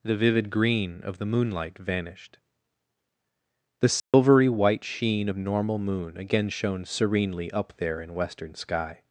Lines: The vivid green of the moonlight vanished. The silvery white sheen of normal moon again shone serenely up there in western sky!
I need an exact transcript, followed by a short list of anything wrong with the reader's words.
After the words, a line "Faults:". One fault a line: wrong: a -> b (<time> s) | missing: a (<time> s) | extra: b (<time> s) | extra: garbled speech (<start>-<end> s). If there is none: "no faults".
The vivid green of the moonlight vanished. The silvery white sheen of normal moon again shone serenely up there in western sky!
Faults:
no faults